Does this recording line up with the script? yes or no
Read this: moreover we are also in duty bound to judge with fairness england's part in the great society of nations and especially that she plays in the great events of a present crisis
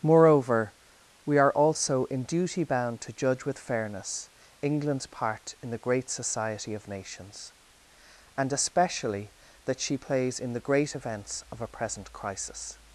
yes